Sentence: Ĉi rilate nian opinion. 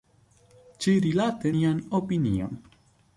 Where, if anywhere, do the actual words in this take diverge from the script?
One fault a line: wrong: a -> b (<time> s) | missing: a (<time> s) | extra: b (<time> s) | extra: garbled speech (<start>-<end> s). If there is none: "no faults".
no faults